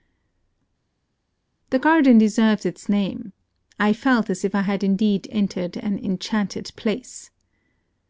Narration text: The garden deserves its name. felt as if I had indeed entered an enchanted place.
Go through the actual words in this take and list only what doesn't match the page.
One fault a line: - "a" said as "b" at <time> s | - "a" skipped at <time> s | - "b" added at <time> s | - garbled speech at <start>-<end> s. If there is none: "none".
- "I" added at 3.8 s